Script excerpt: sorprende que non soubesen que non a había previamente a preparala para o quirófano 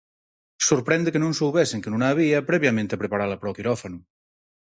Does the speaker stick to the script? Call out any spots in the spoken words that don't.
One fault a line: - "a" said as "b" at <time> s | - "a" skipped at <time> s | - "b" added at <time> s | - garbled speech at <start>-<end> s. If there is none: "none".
none